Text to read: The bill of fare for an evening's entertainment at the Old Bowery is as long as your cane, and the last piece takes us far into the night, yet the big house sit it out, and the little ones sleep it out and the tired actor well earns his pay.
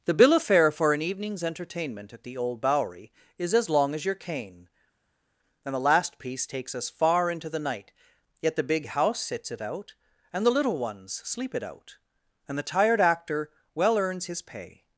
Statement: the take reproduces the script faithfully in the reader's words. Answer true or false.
false